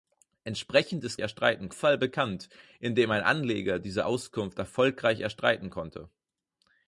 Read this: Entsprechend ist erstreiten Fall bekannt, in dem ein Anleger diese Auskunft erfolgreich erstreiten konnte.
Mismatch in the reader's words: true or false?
false